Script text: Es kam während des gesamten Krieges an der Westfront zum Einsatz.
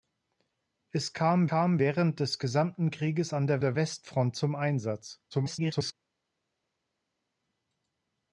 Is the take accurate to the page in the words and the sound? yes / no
no